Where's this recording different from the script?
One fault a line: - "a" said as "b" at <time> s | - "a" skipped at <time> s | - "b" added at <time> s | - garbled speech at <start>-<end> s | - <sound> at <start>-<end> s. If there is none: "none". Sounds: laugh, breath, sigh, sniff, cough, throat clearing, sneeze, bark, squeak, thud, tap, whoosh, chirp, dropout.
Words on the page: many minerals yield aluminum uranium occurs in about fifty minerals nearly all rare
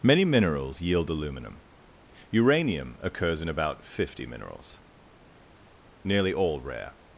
none